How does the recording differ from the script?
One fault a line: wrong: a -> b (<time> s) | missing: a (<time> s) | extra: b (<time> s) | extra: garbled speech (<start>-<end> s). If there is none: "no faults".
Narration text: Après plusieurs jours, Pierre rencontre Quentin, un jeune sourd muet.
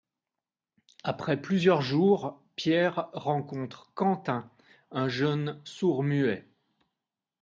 no faults